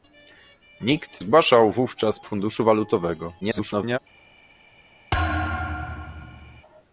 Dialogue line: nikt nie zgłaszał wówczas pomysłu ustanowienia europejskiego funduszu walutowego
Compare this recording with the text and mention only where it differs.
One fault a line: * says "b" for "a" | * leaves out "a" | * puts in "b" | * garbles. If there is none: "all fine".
* leaves out "nie"
* leaves out "pomysłu ustanowienia europejskiego"
* garbles